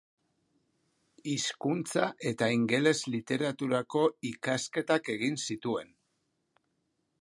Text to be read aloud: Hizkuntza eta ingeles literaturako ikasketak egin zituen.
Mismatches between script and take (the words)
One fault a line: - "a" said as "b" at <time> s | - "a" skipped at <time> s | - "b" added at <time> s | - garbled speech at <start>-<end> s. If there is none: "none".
none